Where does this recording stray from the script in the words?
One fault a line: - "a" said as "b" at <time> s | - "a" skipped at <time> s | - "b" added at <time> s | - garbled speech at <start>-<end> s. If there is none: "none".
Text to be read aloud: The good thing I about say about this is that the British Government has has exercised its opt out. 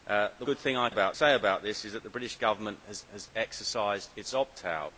none